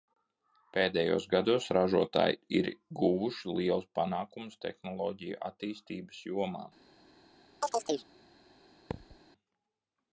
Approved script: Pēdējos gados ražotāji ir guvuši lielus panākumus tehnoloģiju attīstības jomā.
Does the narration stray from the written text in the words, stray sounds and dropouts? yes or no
yes